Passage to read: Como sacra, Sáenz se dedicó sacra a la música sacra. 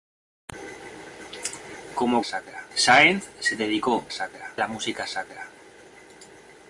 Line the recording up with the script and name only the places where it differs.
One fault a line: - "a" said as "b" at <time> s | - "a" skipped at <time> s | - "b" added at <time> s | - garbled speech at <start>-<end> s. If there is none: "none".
none